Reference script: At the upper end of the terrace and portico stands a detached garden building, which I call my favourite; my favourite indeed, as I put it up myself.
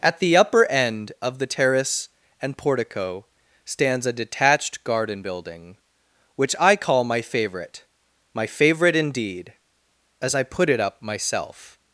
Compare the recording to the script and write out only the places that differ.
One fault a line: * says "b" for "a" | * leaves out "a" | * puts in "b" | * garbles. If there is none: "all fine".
all fine